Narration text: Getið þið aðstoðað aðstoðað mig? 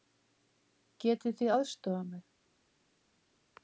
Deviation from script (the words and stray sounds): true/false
true